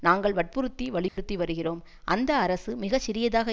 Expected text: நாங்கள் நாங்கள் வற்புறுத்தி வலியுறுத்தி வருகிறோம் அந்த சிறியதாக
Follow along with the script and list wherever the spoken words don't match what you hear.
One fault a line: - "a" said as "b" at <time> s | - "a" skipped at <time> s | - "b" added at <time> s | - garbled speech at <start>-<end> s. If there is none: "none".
- "நாங்கள்" skipped at 0.3 s
- "அரசு மிக" added at 2.4 s